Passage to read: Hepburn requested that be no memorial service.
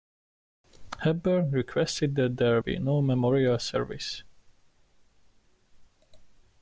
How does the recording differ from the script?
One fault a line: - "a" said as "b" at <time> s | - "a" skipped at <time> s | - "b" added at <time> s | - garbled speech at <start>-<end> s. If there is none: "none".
- "there" added at 2.4 s